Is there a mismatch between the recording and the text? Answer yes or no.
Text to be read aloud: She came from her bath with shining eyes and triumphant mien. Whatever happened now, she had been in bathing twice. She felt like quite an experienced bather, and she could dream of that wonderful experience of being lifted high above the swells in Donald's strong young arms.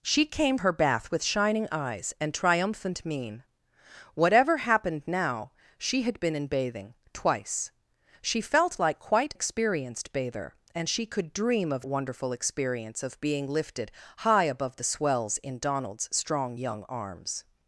yes